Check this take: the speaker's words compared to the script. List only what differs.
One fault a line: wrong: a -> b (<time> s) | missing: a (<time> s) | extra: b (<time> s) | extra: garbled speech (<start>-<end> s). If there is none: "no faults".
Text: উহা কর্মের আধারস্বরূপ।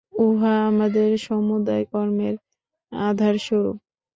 extra: আমাদের সমুদয় (0.7 s)